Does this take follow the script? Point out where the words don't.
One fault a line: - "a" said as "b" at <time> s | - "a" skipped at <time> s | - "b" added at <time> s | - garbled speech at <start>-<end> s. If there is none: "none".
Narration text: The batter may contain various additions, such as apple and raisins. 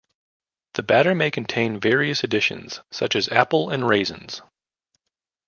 none